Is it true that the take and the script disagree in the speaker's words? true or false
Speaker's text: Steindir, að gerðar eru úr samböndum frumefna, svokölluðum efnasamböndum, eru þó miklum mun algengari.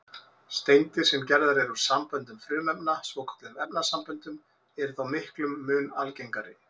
true